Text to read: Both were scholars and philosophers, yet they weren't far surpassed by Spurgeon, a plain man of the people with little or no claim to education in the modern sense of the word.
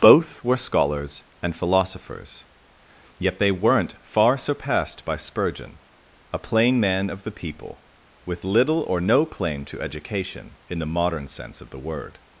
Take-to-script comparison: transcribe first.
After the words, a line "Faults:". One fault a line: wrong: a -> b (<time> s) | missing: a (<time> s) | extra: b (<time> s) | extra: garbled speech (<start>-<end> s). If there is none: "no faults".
Both were scholars and philosophers, yet they weren't far surpassed by Spurgeon, a plain man of the people with little or no claim to education in the modern sense of the word.
Faults:
no faults